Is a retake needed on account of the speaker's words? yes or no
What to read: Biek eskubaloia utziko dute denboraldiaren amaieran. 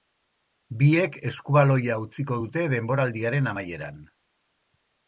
no